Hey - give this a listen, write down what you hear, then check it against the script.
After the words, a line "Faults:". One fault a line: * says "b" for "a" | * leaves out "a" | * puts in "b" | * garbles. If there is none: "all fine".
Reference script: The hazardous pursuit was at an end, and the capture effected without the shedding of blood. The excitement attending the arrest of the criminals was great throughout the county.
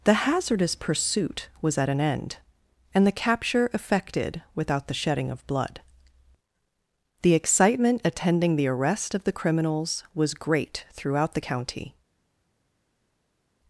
The hazardous pursuit was at an end, and the capture effected without the shedding of blood. The excitement attending the arrest of the criminals was great throughout the county.
Faults:
all fine